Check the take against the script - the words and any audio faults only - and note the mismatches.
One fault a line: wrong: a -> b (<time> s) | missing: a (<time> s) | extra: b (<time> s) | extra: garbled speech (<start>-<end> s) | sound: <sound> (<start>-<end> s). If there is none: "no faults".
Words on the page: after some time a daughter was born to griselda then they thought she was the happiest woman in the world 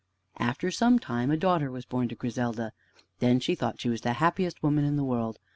wrong: they -> she (3.4 s)